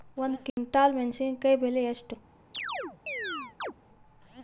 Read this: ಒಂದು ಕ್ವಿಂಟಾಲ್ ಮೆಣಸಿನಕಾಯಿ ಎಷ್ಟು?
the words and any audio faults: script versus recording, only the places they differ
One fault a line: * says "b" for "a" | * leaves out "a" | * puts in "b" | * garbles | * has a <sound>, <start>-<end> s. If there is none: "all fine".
* has a dropout, 0.5-0.6 s
* puts in "ಬೆಲೆ"
* has a chirp, 2.5-3.7 s